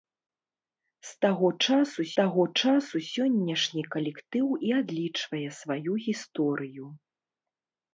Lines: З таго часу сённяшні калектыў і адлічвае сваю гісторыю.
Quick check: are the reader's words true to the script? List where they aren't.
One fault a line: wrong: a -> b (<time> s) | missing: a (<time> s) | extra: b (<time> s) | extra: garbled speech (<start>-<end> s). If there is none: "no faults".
extra: таго часу (2.2 s)